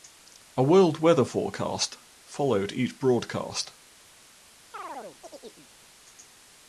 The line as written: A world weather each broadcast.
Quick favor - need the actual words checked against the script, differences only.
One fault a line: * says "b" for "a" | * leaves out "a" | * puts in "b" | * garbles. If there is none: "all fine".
* puts in "forecast followed"